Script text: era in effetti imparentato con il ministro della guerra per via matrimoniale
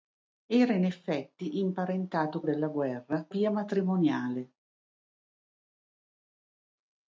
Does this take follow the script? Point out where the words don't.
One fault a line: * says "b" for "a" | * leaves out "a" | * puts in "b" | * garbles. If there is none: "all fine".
* leaves out "con il ministro"
* leaves out "per"